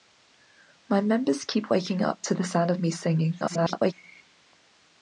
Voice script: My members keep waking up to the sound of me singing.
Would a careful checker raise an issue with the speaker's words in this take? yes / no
yes